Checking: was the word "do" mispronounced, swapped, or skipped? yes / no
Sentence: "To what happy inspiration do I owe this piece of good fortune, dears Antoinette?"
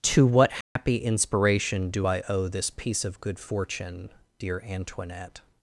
no